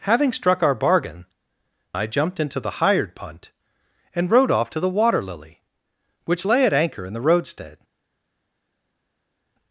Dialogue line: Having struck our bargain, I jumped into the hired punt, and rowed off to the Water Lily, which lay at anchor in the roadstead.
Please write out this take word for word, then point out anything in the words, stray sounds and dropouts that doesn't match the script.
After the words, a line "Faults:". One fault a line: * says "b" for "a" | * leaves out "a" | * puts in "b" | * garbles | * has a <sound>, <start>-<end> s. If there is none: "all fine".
Having struck our bargain, I jumped into the hired punt, and rowed off to the Water Lily, which lay at anchor in the roadstead.
Faults:
all fine